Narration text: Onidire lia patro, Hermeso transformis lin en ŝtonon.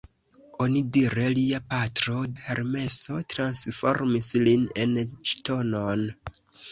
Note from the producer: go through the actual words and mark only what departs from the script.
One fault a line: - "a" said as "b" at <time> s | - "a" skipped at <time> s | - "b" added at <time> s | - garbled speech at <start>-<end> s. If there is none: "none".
none